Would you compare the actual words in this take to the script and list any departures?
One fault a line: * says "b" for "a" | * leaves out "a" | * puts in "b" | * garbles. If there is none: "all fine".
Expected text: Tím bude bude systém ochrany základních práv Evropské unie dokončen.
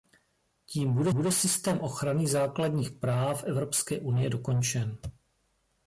all fine